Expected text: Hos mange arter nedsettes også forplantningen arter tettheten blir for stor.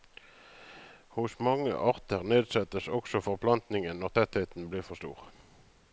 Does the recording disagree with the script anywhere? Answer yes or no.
yes